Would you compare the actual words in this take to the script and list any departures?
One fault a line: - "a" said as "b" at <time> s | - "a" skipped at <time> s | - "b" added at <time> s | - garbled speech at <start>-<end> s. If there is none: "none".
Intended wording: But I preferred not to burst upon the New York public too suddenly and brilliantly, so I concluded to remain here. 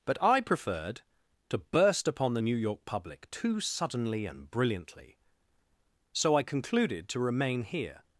- "not" skipped at 1.0 s